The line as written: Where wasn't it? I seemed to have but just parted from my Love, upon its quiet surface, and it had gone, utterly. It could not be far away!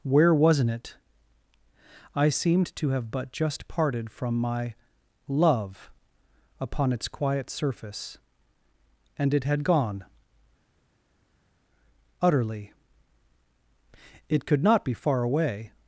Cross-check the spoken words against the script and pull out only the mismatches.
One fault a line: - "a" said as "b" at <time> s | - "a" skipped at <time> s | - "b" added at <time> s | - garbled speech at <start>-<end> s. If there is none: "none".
none